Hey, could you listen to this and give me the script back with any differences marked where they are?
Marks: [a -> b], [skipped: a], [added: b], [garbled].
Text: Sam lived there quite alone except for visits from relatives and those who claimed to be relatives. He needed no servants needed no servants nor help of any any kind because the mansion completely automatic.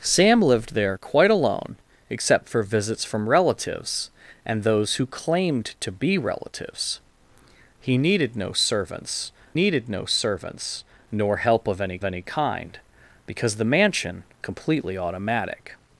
Sam lived there quite alone except for visits from relatives and those who claimed to be relatives. He needed no servants needed no servants nor help of any any kind because the mansion completely automatic.